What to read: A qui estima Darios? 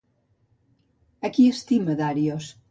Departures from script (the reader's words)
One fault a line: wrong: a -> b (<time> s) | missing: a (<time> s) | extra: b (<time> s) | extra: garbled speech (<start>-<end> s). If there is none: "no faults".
no faults